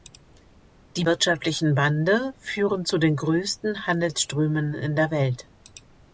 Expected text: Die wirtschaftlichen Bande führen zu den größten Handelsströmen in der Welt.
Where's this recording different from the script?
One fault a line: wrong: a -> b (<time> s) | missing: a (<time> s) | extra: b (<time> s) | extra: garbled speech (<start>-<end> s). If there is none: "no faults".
no faults